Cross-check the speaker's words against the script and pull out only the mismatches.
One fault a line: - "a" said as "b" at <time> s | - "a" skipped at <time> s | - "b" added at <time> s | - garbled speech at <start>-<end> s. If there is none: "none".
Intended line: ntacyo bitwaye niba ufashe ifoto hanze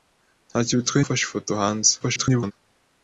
- "niba" skipped at 1.0 s
- garbled speech at 2.0-2.5 s